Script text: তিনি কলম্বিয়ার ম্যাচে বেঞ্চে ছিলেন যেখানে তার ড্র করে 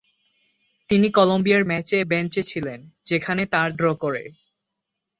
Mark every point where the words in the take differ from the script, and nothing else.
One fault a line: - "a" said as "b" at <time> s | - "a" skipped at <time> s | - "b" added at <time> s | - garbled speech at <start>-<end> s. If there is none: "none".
none